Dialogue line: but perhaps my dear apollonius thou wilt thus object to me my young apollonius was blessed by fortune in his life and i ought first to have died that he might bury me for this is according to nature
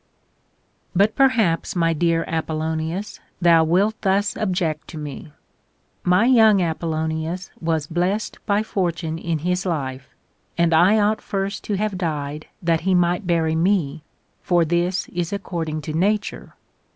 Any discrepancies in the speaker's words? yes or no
no